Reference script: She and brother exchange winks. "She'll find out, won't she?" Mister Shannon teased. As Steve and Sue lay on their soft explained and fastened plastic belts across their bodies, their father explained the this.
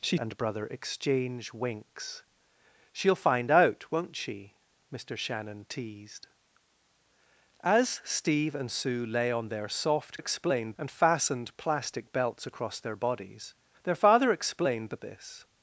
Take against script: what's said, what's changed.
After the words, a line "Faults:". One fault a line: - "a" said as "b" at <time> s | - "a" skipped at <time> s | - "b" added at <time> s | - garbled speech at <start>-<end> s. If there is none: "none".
She and brother exchange winks. "She'll find out, won't she?" Mister Shannon teased. As Steve and Sue lay on their soft explained and fastened plastic belts across their bodies, their father explained the this.
Faults:
none